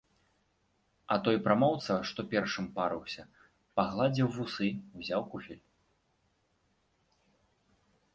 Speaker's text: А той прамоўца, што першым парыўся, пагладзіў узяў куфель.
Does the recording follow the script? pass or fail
fail